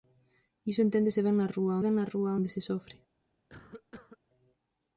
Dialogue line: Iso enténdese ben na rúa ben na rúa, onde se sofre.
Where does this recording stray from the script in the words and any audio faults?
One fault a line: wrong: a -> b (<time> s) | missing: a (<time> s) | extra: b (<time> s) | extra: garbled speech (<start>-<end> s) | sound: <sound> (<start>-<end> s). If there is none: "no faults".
sound: cough (3.5-4.2 s)